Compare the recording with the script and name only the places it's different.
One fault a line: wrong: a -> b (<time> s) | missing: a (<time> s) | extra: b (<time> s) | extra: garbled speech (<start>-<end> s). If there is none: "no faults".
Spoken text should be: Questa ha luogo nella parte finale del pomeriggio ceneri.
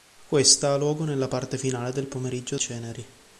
no faults